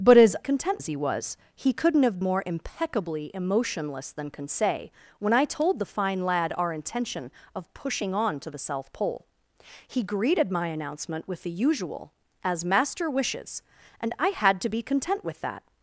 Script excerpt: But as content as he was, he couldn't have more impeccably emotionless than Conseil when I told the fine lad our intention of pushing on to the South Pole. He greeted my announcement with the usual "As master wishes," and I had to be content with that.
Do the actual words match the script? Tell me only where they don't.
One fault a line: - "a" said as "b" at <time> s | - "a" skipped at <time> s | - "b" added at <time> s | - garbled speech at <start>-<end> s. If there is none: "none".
none